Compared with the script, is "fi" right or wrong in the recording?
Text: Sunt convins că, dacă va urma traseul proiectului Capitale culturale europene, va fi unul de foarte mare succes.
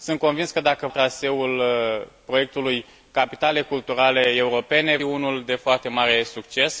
wrong